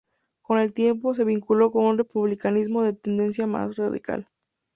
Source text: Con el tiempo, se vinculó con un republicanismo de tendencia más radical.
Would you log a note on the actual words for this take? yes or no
no